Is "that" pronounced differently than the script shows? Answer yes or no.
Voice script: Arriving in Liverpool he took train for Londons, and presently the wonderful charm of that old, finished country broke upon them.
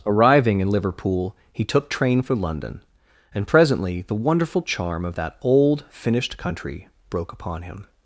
no